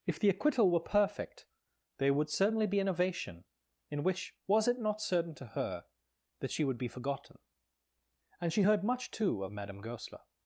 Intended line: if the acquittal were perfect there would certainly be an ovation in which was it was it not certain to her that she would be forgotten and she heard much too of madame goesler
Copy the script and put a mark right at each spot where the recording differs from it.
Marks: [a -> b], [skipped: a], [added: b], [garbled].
if the acquittal were perfect there would certainly be an ovation in which was it [skipped: was it] not certain to her that she would be forgotten and she heard much too of madame goesler